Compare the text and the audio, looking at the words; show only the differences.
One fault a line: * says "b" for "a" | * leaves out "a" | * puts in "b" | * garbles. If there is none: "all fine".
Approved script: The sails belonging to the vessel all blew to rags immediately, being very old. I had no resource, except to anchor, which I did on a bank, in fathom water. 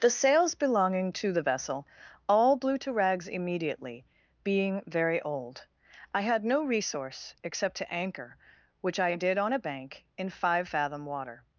* puts in "five"